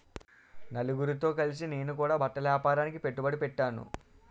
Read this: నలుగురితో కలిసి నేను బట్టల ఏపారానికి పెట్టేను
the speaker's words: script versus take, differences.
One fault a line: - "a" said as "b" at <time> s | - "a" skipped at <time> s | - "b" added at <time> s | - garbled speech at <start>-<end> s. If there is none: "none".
- "కూడా" added at 1.9 s
- "పెట్టుబడి" added at 3.0 s